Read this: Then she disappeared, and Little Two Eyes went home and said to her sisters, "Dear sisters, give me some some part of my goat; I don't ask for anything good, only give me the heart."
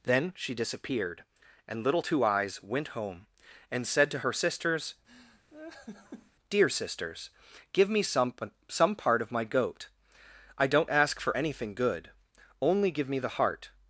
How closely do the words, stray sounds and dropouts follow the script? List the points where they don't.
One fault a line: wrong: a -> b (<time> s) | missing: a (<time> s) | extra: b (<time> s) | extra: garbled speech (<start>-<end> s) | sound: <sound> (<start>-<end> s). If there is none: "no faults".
sound: laugh (5.1-6.3 s)